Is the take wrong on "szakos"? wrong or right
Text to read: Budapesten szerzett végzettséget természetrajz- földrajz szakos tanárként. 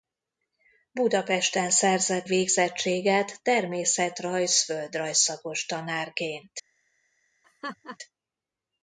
right